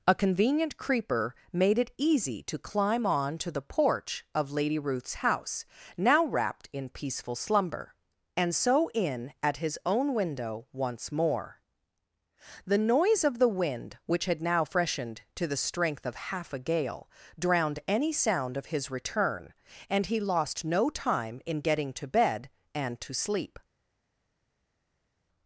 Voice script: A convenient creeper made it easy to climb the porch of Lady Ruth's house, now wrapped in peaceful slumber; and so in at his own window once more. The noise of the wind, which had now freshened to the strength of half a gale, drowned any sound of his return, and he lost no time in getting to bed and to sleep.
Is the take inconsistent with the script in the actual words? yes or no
yes